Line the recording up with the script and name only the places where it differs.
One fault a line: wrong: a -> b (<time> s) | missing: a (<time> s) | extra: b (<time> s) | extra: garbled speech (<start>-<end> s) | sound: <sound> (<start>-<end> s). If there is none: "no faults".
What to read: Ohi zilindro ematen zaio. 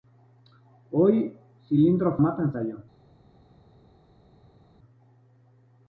no faults